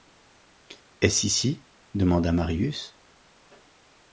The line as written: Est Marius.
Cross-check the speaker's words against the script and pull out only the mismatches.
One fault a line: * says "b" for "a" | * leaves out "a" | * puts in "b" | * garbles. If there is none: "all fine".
* puts in "ce ici demanda"